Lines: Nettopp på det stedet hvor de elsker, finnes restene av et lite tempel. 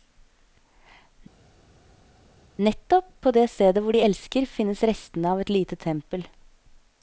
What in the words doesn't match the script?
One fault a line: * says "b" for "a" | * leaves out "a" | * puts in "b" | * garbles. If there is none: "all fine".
all fine